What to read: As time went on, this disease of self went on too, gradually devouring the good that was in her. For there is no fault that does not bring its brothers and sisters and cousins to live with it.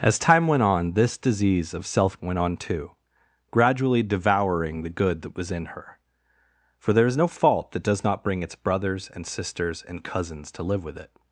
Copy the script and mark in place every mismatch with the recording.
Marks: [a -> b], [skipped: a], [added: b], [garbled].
As time went on, this disease of self went on too, gradually devouring the good that was in her. For there is no fault that does not bring its brothers and sisters and cousins to live with it.